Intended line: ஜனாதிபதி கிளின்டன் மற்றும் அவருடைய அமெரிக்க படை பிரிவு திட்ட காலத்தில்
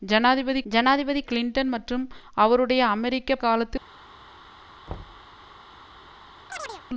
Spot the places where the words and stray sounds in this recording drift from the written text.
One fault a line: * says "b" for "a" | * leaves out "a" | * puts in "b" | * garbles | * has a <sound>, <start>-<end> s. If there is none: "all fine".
* puts in "ஜனாதிபதி"
* leaves out "படை பிரிவு திட்ட"
* has a thud, 4.9-5.3 s
* has a chirp, 6.5-6.8 s